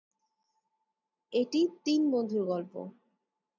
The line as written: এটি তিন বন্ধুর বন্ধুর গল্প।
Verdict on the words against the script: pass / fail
fail